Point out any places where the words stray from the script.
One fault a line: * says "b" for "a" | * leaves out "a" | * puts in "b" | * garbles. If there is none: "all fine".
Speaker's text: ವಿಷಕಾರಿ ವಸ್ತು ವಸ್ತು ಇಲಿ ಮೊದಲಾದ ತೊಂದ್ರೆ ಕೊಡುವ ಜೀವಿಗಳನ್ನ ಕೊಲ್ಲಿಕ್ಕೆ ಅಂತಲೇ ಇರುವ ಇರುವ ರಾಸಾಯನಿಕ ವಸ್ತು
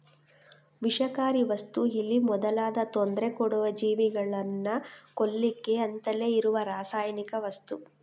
* leaves out "ವಸ್ತು"
* leaves out "ಇರುವ"